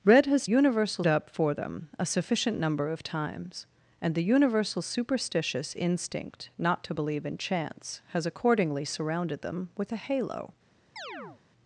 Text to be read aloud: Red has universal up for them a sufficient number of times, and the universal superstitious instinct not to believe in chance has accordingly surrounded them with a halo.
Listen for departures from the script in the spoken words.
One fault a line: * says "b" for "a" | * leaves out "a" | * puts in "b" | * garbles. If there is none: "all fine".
all fine